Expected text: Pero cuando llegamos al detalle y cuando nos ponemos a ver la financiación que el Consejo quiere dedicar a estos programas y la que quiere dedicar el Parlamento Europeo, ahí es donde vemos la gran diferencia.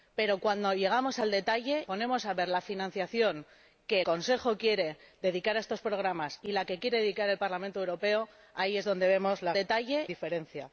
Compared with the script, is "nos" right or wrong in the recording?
wrong